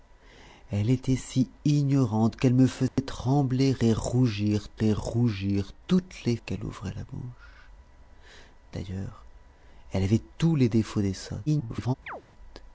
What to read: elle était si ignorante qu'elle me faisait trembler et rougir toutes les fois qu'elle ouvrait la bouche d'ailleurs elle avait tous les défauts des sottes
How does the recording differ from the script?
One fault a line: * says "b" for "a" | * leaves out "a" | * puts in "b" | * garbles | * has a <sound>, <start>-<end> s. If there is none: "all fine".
* has a dropout, 2.9-3.0 s
* puts in "et rougir"
* leaves out "fois"
* garbles
* has a chirp, 12.1-12.2 s